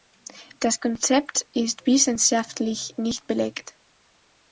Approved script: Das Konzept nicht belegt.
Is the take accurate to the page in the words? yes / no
no